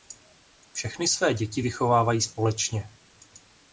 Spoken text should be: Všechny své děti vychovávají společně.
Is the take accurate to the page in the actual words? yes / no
yes